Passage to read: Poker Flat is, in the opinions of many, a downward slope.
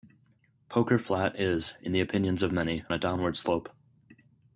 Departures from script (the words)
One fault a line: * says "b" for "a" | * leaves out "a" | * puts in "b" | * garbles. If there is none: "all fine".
all fine